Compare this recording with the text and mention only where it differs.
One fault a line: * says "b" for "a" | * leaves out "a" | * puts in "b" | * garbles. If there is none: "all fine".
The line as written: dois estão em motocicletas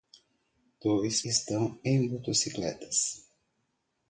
all fine